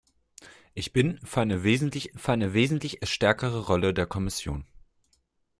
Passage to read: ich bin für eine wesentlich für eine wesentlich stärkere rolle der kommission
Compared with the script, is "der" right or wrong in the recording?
right